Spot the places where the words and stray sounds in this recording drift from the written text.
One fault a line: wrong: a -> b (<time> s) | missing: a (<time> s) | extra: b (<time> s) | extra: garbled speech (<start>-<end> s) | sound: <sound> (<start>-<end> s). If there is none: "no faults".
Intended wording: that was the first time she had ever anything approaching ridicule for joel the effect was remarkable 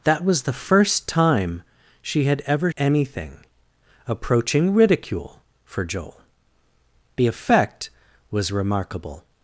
no faults